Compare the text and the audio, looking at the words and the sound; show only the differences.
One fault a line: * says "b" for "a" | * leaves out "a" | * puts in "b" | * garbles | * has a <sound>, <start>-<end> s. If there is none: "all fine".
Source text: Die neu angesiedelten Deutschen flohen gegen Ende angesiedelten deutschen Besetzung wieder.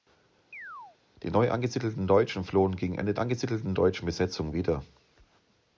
* has a chirp, 0.5-1.0 s